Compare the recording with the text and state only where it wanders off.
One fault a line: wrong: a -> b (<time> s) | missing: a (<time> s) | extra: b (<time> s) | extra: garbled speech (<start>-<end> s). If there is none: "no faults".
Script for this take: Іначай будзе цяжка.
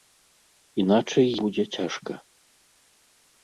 no faults